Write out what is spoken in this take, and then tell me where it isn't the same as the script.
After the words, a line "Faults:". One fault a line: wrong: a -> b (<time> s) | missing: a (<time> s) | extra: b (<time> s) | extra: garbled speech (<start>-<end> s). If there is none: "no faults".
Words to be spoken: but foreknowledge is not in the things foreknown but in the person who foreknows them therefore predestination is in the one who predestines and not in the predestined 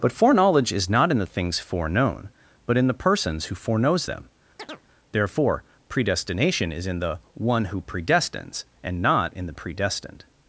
but foreknowledge is not in the things foreknown but in the persons who foreknows them therefore predestination is in the one who predestines and not in the predestined
Faults:
wrong: person -> persons (2.9 s)